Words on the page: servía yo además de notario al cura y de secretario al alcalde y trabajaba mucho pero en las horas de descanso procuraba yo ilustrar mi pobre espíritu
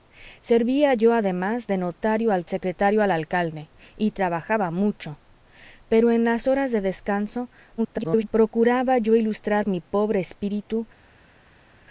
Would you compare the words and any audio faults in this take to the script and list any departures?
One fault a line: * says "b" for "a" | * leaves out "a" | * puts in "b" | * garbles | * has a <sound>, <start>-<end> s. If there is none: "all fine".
* leaves out "cura y de"
* garbles